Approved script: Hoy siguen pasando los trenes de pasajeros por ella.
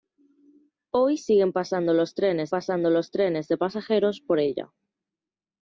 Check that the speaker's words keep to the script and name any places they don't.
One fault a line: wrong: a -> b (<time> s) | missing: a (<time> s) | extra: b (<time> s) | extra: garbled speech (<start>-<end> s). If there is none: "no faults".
extra: pasando los trenes (2.5 s)